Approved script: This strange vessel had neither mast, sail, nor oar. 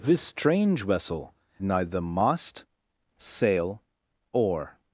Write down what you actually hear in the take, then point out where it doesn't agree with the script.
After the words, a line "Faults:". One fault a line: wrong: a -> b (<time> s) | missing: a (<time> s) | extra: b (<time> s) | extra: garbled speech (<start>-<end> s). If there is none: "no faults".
This strange vessel neither mast, sail, oar.
Faults:
missing: had (1.4 s)
missing: nor (3.8 s)